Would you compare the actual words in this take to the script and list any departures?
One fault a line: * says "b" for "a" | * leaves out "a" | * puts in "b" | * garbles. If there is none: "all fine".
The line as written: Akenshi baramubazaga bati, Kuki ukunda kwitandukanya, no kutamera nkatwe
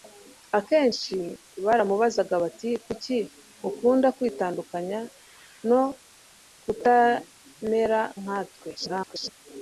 * garbles